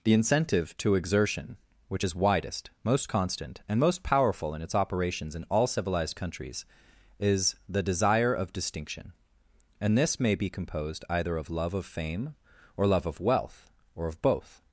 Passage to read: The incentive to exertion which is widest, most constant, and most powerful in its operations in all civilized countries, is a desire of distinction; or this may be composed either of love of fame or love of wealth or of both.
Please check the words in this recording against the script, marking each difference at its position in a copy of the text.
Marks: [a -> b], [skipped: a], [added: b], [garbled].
The incentive to exertion which is widest, most constant, and most powerful in its operations in all civilized countries, is [a -> the] desire of distinction; [or -> and] this may be composed either of love of fame or love of wealth or of both.